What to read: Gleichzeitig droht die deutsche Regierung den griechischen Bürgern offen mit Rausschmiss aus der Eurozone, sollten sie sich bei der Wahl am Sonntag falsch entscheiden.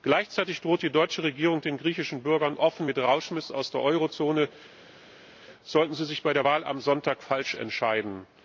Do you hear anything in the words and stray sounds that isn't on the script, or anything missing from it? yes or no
no